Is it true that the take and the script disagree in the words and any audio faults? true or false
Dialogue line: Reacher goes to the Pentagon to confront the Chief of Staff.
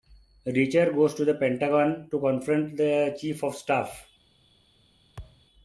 true